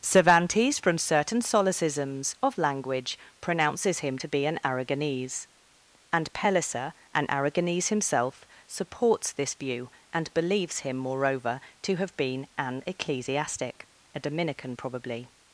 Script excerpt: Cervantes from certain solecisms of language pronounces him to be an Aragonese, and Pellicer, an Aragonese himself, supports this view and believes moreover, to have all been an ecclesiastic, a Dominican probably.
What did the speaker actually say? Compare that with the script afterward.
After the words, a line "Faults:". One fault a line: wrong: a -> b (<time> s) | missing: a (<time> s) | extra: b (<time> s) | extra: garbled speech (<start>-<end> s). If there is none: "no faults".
Cervantes from certain solecisms of language pronounces him to be an Aragonese, and Pellicer, an Aragonese himself, supports this view and believes him, moreover, to have been an ecclesiastic, a Dominican probably.
Faults:
extra: him (10.8 s)
missing: all (12.2 s)